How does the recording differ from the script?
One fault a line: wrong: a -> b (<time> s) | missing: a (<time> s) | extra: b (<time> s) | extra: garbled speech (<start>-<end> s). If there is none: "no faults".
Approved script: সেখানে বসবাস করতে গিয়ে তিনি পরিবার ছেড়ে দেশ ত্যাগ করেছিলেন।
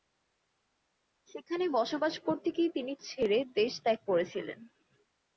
missing: পরিবার (2.9 s)